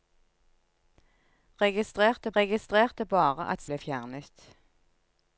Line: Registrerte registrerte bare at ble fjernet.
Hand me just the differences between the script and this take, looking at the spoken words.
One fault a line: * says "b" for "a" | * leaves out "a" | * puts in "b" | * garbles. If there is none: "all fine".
all fine